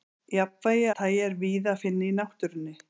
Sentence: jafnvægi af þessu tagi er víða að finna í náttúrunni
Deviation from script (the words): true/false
true